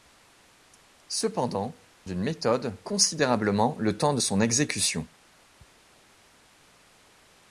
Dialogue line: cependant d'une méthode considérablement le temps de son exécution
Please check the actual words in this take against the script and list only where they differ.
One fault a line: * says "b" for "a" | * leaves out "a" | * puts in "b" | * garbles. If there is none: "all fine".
all fine